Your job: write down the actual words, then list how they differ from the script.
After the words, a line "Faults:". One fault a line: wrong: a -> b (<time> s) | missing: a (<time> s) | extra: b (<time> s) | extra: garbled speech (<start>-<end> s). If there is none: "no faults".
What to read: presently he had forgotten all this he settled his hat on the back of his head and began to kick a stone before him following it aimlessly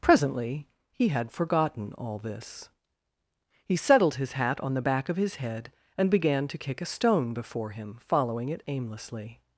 presently he had forgotten all this he settled his hat on the back of his head and began to kick a stone before him following it aimlessly
Faults:
no faults